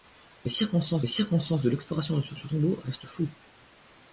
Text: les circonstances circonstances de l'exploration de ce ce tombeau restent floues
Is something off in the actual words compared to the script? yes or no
no